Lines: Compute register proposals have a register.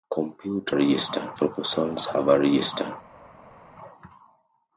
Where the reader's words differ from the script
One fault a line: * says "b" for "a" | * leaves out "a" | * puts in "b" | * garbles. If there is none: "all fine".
all fine